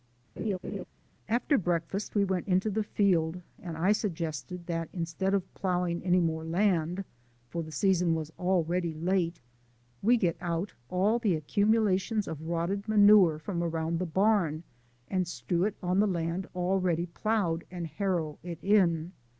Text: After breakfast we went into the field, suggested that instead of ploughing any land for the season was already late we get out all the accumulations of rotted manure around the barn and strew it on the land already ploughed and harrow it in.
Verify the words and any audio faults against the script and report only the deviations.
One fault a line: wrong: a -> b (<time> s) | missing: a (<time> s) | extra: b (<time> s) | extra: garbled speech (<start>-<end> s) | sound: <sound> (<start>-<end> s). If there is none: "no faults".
sound: laugh (0.4-0.8 s)
extra: and I (3.6 s)
extra: more (6.2 s)
extra: from (13.4 s)